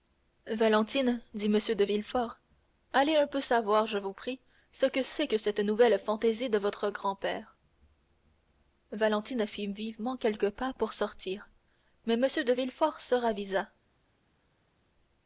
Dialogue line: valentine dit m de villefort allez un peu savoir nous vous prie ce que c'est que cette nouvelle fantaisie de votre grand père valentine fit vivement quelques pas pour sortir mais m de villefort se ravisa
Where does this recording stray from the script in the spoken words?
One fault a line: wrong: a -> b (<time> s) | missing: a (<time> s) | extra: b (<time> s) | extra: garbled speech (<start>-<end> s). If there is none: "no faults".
wrong: nous -> je (3.9 s)